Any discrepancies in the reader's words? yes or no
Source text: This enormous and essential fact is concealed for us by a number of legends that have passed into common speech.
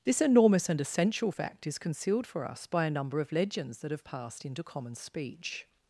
no